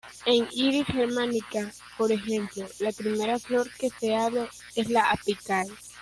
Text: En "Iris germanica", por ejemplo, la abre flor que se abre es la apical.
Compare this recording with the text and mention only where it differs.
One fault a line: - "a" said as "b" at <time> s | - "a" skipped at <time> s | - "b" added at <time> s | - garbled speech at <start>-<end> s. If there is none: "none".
- "abre" said as "primera" at 2.9 s